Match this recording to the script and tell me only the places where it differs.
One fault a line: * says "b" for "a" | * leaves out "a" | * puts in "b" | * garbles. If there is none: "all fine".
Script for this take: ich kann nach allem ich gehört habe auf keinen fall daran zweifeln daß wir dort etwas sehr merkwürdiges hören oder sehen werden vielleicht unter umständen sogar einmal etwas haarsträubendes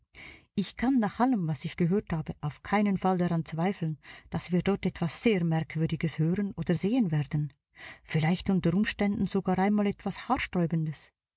* puts in "was"